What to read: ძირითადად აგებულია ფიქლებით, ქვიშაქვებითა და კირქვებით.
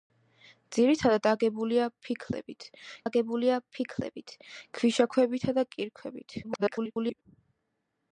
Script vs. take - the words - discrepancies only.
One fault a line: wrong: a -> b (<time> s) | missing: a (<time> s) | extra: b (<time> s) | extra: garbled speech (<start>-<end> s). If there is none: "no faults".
extra: აგებულია ფიქლებით (3.0 s)
extra: garbled speech (6.4-7.2 s)